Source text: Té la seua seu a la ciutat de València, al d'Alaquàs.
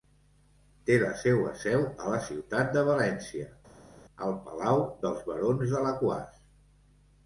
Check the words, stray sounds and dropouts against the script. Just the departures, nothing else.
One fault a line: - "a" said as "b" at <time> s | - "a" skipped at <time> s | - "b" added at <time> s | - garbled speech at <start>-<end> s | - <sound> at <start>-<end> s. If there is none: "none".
- "palau dels Barons" added at 4.5 s